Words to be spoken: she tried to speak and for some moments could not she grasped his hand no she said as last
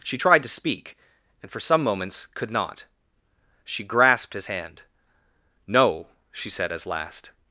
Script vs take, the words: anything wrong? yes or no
no